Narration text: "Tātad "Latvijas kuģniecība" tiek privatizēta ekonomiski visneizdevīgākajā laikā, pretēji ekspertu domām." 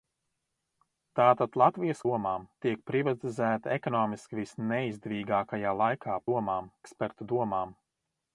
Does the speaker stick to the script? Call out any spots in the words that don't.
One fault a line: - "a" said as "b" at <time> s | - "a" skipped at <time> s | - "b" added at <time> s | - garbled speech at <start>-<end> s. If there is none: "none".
- "kuģniecība" said as "domām" at 2.1 s
- "pretēji" said as "domām" at 6.3 s